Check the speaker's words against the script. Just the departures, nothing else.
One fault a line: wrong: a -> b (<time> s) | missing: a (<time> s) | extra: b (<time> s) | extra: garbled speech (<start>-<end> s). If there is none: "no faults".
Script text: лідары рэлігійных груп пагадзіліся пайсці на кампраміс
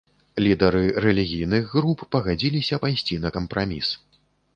no faults